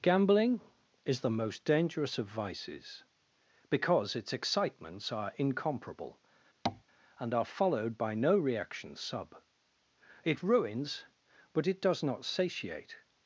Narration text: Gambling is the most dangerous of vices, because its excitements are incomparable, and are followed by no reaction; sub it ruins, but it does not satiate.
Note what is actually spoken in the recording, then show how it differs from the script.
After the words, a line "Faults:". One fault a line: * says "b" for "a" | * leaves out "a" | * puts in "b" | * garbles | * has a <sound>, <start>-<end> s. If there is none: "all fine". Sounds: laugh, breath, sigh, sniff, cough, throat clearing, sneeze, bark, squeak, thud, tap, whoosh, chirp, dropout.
Gambling is the most dangerous of vices, because its excitements are incomparable, and are followed by no reaction; sub it ruins, but it does not satiate.
Faults:
* has a tap, 6.7-6.8 s